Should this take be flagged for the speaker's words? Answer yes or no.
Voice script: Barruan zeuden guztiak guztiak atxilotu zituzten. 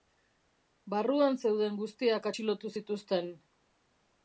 yes